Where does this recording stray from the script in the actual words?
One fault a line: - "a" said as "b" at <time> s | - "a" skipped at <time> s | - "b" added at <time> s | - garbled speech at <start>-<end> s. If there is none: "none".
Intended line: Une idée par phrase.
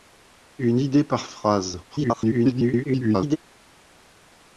- garbled speech at 1.9-3.4 s